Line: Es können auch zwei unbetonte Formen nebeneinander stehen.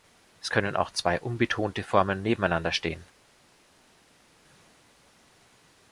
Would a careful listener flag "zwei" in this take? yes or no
no